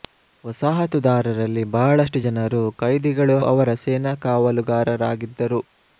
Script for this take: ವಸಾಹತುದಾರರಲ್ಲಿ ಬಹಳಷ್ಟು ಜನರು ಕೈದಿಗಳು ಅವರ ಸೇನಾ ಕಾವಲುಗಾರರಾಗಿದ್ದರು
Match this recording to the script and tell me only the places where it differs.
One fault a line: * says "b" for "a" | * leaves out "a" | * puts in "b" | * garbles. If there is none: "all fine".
all fine